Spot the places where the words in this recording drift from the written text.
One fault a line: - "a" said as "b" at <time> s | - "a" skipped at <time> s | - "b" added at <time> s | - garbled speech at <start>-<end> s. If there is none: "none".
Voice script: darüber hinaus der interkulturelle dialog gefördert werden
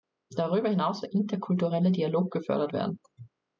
none